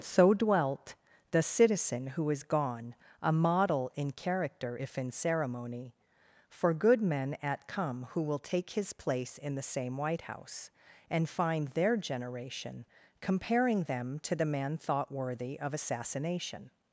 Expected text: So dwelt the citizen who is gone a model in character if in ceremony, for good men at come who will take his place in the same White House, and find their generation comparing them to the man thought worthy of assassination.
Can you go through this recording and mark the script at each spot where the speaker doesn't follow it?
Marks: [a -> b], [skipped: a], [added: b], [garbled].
So dwelt the citizen who is gone a model in character if in ceremony, for good men at come who will take his place in the same White House, and find their generation comparing them to the man thought worthy of assassination.